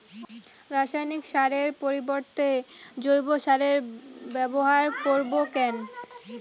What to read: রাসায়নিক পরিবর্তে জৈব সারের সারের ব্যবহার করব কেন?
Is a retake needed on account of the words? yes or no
yes